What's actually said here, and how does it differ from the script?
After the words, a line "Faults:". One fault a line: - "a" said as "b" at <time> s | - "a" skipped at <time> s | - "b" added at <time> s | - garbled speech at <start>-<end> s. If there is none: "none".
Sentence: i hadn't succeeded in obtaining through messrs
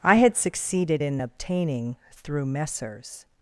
i had succeeded in obtaining through messrs
Faults:
- "hadn't" said as "had" at 0.1 s